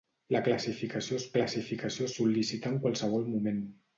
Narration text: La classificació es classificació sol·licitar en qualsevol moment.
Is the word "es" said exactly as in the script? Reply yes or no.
yes